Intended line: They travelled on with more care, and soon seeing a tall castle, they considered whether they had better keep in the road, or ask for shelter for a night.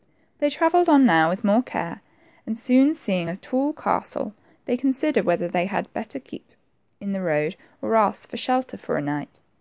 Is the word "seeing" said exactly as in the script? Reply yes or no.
yes